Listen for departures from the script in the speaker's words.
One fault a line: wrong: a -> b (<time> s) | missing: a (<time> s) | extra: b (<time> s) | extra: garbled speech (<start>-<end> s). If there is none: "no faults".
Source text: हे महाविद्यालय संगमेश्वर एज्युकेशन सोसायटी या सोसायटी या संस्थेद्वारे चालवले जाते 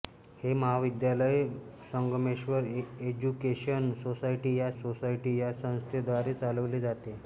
no faults